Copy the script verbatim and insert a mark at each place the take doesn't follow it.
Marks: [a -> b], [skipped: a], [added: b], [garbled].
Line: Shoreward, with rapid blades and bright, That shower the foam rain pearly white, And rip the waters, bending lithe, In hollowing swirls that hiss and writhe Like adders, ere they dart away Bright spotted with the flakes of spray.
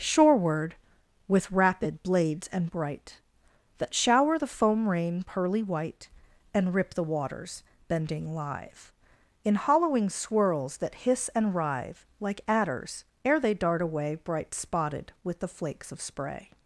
Shoreward, with rapid blades and bright, That shower the foam rain pearly white, And rip the waters, bending [lithe, -> live] In hollowing swirls that hiss and writhe Like adders, ere they dart away Bright spotted with the flakes of spray.